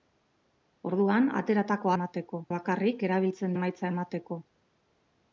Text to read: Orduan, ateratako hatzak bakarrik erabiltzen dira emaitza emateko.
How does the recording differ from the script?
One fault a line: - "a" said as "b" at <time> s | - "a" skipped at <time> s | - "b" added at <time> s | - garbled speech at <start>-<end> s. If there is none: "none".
- "hatzak" said as "emateko" at 2.0 s
- "dira" skipped at 3.6 s